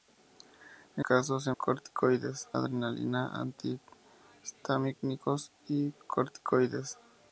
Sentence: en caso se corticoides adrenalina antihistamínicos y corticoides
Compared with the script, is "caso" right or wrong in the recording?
right